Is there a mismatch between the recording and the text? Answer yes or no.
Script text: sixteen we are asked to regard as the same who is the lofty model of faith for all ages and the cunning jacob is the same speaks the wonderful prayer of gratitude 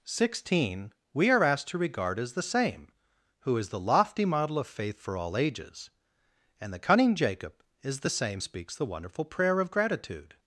no